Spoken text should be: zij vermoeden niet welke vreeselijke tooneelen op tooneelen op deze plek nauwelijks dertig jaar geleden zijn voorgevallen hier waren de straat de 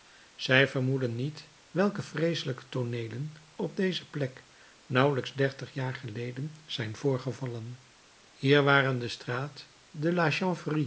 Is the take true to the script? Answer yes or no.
no